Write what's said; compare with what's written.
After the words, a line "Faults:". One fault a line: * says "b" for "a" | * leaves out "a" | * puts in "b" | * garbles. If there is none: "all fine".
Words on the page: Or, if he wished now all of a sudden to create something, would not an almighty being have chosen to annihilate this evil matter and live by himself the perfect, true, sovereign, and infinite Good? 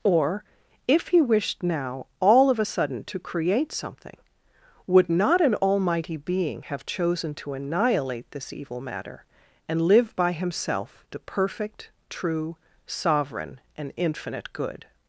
Or, if he wished now all of a sudden to create something, would not an almighty being have chosen to annihilate this evil matter and live by himself the perfect, true, sovereign, and infinite Good?
Faults:
all fine